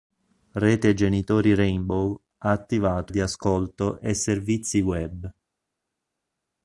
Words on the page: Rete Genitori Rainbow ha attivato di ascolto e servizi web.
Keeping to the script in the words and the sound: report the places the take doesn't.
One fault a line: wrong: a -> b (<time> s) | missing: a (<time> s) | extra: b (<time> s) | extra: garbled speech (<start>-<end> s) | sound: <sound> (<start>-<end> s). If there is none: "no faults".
no faults